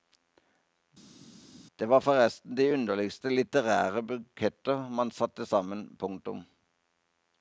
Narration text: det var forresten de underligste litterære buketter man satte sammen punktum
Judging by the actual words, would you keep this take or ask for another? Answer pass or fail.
pass